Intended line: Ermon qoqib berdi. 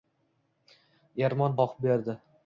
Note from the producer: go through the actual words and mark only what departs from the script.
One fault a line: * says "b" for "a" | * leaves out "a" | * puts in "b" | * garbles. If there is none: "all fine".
all fine